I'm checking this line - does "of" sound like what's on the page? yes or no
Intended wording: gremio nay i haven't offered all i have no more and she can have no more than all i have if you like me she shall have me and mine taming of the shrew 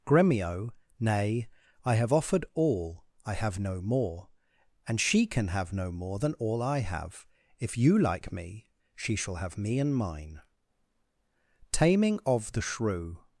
yes